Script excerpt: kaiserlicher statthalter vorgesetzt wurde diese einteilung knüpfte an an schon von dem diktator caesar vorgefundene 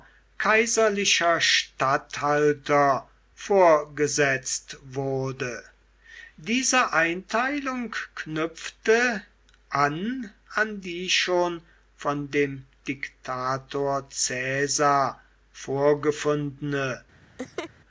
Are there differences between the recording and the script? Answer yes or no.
yes